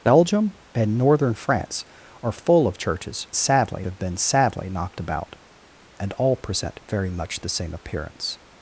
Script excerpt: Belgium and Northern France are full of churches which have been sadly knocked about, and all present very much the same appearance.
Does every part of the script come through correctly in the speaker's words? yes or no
no